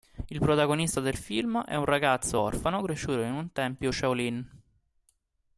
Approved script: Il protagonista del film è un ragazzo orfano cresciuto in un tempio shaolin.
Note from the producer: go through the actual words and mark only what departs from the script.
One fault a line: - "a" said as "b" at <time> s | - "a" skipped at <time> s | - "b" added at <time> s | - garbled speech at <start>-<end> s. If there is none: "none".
none